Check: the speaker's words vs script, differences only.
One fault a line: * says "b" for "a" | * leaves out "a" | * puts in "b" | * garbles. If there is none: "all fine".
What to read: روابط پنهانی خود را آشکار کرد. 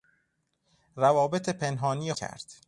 * leaves out "خود را آشکار"